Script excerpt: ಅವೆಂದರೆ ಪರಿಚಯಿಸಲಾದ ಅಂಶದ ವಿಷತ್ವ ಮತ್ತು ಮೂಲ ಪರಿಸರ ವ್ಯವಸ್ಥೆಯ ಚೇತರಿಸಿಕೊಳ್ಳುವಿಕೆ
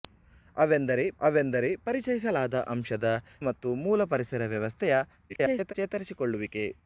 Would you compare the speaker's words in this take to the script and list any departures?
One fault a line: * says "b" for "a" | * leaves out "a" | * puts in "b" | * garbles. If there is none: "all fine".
* puts in "ಅವೆಂದರೆ"
* leaves out "ವಿಷತ್ವ"
* garbles